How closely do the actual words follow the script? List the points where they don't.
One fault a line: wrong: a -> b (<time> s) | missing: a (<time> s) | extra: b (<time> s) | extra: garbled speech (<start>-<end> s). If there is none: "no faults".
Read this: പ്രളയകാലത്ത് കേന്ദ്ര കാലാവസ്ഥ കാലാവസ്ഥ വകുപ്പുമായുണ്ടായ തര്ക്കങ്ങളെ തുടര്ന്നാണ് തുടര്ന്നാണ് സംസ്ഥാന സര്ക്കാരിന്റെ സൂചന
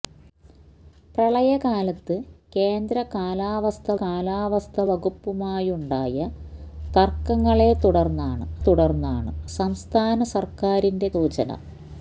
no faults